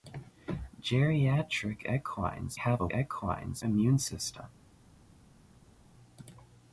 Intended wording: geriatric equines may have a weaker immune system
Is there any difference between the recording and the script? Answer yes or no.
yes